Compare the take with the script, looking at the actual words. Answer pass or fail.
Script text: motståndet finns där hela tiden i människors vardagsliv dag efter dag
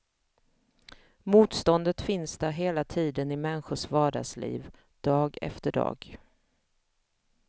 pass